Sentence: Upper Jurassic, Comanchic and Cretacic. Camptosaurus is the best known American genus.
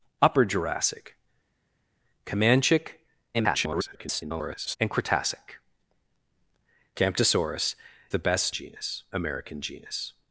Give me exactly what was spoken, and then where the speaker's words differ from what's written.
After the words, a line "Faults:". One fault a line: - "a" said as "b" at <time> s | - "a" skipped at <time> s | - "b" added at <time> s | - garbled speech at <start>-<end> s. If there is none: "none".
Upper Jurassic, Comanchic [garbled] and Cretacic. Camptosaurus the best genus American genus.
Faults:
- garbled speech at 3.3-4.8 s
- "is" skipped at 7.7 s
- "known" said as "genus" at 8.5 s